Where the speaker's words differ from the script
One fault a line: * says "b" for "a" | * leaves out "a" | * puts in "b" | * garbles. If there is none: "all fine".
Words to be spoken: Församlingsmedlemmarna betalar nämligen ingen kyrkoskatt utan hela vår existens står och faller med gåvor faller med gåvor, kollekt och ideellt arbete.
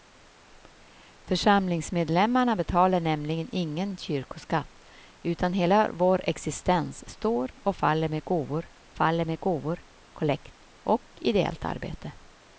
all fine